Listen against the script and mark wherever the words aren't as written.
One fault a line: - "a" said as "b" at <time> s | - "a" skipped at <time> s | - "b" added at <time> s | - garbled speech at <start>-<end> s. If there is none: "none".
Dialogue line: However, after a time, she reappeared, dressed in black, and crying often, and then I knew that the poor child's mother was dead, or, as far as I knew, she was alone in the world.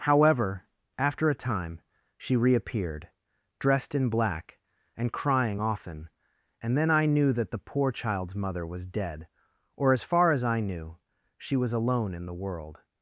none